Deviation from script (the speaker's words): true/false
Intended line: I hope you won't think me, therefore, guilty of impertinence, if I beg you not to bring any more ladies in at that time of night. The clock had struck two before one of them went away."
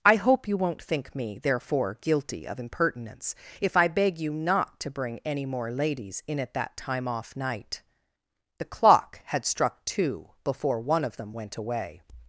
true